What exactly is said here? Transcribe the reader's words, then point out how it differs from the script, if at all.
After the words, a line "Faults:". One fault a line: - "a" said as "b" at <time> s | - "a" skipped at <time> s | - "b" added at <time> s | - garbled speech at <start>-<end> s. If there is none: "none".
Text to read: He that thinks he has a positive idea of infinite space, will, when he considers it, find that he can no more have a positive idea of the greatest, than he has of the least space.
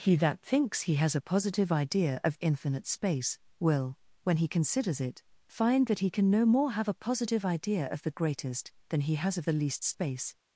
He that thinks he has a positive idea of infinite space, will, when he considers it, find that he can no more have a positive idea of the greatest, than he has of the least space.
Faults:
none